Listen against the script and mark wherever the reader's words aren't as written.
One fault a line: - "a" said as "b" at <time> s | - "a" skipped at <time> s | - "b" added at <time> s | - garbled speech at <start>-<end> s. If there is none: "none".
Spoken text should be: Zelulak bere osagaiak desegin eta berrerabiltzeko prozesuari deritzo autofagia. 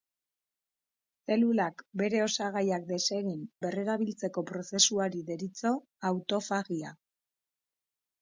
- "eta" skipped at 3.4 s